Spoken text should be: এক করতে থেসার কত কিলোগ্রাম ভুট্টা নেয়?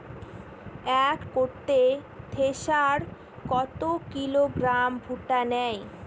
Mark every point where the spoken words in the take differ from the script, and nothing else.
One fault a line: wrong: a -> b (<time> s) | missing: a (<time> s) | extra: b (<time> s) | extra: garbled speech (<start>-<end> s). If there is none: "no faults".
no faults